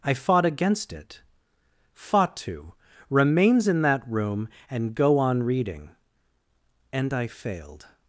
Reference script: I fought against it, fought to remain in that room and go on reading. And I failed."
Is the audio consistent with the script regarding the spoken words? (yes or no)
no